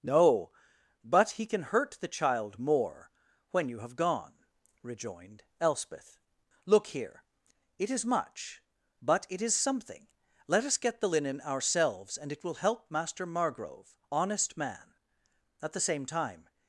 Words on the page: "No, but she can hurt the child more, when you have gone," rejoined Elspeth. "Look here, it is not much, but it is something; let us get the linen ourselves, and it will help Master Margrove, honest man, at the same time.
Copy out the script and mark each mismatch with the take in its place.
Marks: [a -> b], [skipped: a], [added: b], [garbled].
"No, but [she -> he] can hurt the child more, when you have gone," rejoined Elspeth. "Look here, it is [skipped: not] much, but it is something; let us get the linen ourselves, and it will help Master Margrove, honest man, at the same time.